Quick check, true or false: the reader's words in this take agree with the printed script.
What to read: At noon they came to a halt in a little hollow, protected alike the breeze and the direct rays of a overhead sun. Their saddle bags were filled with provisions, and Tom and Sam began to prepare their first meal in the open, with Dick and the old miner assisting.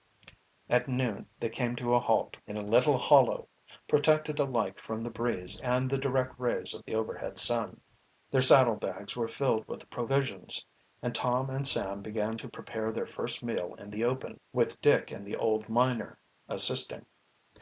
false